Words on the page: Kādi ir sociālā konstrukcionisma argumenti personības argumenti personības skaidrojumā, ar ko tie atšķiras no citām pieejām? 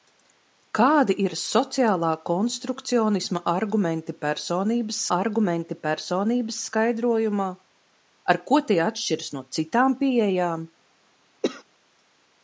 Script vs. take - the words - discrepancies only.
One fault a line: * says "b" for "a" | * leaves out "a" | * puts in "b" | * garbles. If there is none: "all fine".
all fine